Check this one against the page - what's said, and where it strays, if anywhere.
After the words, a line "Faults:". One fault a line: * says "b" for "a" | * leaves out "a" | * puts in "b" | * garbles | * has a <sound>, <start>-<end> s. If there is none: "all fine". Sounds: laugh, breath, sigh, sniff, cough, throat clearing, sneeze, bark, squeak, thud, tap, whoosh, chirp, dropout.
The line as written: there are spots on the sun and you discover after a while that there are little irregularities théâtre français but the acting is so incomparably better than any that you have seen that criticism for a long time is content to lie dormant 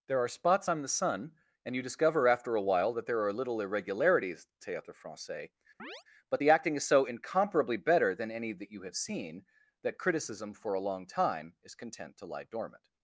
there are spots on the sun and you discover after a while that there are little irregularities théâtre français but the acting is so incomparably better than any that you have seen that criticism for a long time is content to lie dormant
Faults:
* has a chirp, 5.8-6.0 s